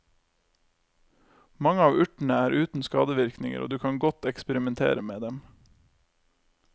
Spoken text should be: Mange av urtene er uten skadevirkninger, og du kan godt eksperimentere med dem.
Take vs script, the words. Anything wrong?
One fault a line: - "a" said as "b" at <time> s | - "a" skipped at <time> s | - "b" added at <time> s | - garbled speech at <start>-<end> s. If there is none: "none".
none